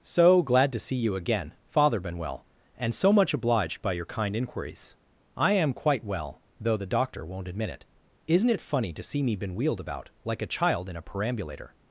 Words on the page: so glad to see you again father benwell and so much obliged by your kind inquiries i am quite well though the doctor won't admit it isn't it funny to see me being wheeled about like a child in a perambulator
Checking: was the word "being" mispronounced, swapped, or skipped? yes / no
yes